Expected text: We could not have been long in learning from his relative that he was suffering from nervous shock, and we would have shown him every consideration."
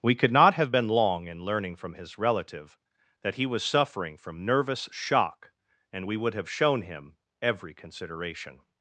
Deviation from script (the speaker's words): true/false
false